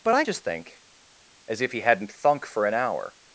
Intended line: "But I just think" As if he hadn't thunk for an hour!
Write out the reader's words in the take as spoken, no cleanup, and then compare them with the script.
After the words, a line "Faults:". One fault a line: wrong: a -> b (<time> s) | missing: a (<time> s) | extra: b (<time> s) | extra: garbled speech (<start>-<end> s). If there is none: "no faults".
"But I just think" As if he hadn't thunk for an hour!
Faults:
no faults